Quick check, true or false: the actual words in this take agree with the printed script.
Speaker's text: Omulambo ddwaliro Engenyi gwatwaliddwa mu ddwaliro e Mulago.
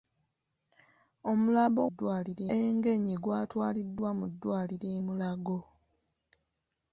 true